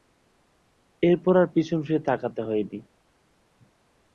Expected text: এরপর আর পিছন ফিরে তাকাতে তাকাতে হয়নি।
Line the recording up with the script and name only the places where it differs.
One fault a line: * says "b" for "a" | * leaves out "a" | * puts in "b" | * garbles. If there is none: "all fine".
* leaves out "তাকাতে"